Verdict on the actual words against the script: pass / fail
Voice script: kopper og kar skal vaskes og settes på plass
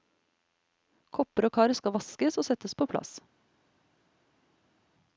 pass